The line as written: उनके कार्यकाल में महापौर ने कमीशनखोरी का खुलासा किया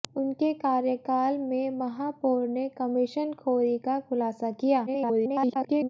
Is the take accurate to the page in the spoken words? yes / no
no